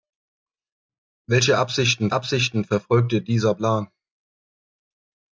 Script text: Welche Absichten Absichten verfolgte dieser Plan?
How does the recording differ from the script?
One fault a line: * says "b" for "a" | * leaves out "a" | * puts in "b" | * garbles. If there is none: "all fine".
all fine